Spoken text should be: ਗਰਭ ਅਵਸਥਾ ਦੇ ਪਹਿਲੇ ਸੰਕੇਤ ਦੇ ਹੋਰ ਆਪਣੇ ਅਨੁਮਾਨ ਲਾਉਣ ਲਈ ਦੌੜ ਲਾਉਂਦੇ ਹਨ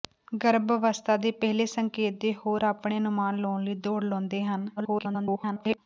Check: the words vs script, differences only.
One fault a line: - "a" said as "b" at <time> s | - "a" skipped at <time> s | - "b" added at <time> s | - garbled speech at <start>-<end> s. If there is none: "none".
- garbled speech at 4.8-5.8 s